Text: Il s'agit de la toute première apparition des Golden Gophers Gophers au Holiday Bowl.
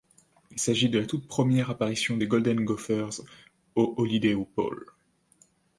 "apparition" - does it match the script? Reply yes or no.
yes